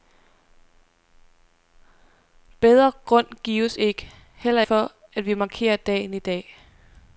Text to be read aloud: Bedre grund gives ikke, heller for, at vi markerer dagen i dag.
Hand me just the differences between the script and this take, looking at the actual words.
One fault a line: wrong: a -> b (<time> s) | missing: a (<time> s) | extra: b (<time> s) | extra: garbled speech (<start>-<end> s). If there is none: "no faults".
no faults